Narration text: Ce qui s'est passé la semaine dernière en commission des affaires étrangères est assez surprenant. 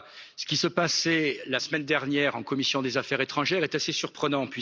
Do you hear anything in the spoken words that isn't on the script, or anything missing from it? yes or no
no